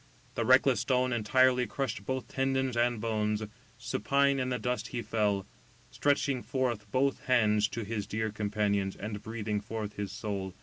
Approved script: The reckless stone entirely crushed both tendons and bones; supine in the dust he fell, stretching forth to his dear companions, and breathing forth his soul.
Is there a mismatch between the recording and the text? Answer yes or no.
yes